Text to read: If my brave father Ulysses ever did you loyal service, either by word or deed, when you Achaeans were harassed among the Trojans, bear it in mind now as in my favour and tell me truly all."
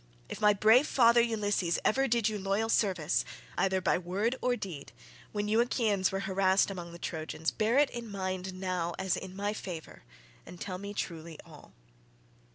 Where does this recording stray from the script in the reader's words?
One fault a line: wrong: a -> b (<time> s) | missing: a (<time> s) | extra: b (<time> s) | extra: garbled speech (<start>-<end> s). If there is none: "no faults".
no faults